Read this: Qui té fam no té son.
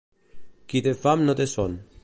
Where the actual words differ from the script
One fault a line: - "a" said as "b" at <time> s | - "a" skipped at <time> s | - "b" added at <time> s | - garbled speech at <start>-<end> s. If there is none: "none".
none